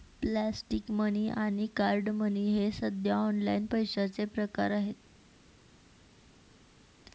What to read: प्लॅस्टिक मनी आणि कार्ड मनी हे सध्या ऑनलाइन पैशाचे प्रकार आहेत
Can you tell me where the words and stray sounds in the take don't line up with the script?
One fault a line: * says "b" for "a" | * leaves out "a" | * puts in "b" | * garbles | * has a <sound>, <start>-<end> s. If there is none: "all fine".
all fine